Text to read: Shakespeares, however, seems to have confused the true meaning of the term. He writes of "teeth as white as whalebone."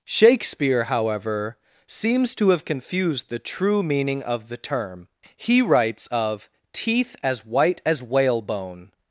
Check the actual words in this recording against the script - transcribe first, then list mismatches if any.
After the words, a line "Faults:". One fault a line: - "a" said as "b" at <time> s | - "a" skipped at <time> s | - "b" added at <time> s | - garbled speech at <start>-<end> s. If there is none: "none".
Shakespeare, however, seems to have confused the true meaning of the term. He writes of "teeth as white as whalebone."
Faults:
- "Shakespeares" said as "Shakespeare" at 0.1 s